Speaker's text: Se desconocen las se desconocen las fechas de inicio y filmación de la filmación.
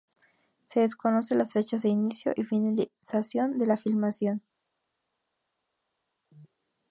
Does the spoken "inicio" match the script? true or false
true